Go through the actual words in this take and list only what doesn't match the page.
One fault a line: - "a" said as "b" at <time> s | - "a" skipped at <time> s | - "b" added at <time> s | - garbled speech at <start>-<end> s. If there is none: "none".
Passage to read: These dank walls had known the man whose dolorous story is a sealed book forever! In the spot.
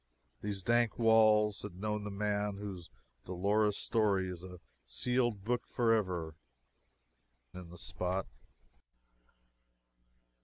none